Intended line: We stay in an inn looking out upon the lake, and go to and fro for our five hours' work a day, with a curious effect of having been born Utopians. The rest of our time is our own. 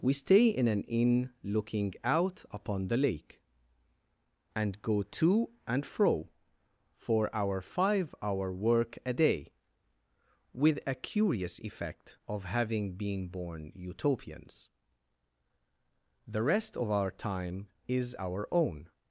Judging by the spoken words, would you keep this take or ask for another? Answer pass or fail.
fail